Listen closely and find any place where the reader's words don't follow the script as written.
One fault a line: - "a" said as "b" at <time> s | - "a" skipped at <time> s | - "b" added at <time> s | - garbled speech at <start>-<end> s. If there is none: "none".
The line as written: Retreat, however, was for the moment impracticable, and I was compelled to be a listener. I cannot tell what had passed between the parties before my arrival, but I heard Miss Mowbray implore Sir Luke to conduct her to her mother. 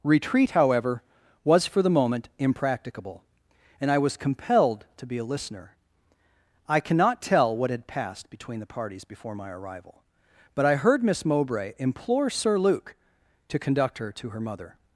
none